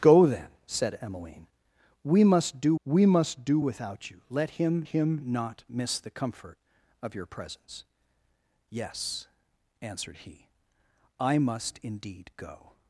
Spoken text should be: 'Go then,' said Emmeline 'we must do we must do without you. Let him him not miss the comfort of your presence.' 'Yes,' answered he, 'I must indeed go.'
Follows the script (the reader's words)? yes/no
yes